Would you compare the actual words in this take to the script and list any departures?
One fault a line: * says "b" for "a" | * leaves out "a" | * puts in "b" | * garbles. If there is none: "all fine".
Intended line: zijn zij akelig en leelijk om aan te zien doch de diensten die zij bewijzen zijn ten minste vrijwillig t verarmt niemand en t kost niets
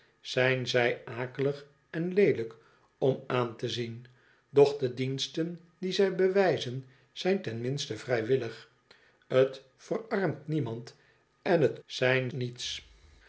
* says "zijn" for "kost"